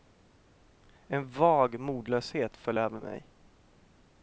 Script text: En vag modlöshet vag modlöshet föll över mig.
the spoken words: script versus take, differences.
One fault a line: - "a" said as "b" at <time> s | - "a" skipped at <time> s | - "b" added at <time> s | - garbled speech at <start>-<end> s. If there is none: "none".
- "vag modlöshet" skipped at 2.6 s